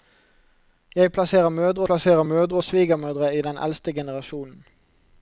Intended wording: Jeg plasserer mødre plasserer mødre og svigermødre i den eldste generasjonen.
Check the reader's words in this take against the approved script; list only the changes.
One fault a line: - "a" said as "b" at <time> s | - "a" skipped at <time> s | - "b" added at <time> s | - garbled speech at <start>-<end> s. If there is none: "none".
none